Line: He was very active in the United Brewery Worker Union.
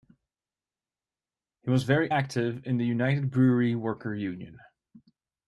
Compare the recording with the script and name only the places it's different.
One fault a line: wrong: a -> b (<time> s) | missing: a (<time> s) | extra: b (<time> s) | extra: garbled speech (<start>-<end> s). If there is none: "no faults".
no faults